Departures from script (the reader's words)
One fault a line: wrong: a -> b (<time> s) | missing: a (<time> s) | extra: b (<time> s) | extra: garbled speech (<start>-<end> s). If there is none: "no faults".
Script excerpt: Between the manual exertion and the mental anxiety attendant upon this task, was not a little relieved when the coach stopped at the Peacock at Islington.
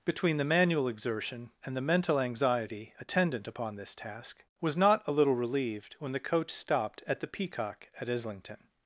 no faults